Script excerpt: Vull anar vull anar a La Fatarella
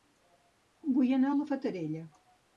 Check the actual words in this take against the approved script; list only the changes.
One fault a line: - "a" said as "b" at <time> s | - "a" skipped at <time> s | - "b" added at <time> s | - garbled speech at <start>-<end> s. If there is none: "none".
- "vull anar" skipped at 1.4 s